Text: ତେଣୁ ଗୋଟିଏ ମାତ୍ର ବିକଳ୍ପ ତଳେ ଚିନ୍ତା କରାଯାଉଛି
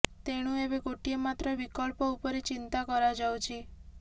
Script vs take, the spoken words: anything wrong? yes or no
yes